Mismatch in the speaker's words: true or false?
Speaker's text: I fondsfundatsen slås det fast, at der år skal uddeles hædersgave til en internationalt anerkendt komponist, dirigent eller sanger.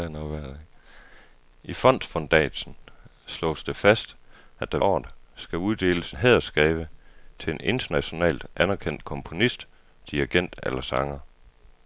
false